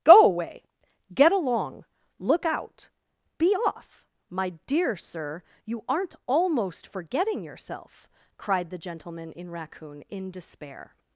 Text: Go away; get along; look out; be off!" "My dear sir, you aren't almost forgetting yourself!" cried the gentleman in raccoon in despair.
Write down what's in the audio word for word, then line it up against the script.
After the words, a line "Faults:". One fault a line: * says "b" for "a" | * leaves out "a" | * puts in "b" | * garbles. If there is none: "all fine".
Go away; get along; look out; be off!" "My dear sir, you aren't almost forgetting yourself!" cried the gentleman in raccoon in despair.
Faults:
all fine